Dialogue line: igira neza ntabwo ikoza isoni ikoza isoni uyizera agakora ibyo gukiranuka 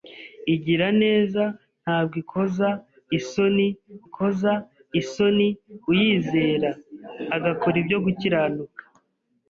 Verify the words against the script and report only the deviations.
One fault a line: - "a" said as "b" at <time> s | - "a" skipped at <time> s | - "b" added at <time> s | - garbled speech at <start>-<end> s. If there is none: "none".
none